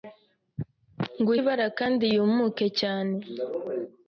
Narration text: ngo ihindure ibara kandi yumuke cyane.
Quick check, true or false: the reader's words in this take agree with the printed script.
false